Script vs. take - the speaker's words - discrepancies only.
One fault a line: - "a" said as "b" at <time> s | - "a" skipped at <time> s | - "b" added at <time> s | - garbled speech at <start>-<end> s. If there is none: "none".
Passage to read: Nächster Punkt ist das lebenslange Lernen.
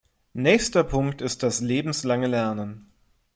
none